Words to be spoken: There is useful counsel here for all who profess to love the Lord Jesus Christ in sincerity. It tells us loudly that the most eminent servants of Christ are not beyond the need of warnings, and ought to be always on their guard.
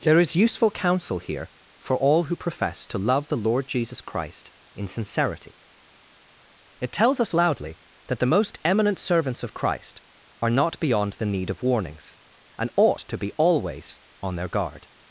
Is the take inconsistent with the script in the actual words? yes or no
no